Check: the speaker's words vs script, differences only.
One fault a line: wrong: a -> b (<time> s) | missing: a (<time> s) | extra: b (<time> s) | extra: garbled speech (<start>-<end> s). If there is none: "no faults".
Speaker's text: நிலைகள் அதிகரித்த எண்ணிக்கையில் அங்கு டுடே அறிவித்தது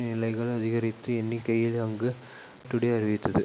no faults